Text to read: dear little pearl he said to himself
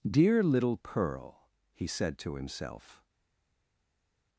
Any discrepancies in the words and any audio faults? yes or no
no